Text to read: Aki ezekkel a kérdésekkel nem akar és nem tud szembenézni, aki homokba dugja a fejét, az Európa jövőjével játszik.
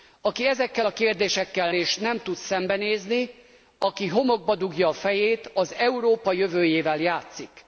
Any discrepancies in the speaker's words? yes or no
yes